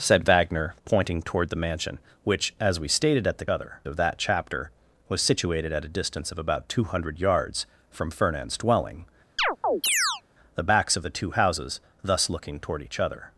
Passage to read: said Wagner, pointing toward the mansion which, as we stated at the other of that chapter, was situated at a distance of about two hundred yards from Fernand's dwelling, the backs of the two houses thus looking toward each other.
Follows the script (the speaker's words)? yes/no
yes